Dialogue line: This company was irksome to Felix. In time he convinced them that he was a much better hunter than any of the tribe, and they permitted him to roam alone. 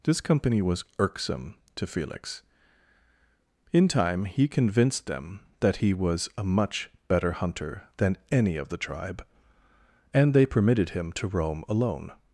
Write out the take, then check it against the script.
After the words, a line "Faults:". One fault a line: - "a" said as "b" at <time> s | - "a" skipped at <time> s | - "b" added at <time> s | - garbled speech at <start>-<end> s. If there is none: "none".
This company was irksome to Felix. In time he convinced them that he was a much better hunter than any of the tribe, and they permitted him to roam alone.
Faults:
none